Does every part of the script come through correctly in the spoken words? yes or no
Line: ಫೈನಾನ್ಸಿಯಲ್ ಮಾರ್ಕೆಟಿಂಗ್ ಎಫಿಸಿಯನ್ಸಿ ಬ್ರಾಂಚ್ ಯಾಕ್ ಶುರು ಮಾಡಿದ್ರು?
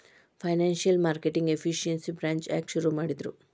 yes